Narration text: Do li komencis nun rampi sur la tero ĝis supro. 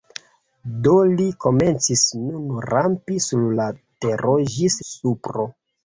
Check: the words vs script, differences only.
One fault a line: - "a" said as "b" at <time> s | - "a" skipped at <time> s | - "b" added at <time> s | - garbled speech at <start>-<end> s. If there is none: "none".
none